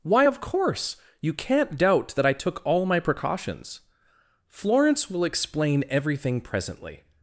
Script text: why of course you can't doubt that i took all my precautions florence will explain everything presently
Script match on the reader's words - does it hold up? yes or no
yes